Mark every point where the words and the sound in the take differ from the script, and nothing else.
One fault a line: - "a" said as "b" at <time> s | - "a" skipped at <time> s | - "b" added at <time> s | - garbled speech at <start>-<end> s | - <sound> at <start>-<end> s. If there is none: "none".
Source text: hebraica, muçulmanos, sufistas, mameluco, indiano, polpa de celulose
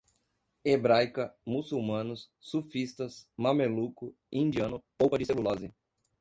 none